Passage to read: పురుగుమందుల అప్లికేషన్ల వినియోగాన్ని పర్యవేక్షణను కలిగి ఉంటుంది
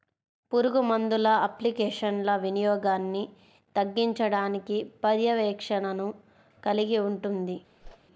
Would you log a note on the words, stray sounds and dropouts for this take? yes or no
yes